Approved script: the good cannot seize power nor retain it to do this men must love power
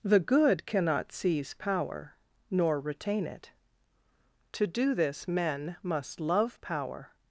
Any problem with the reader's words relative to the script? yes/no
no